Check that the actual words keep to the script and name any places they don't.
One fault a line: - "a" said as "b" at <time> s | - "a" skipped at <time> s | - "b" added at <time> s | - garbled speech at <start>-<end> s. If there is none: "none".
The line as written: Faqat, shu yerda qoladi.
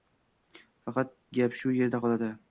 - "gap" added at 1.4 s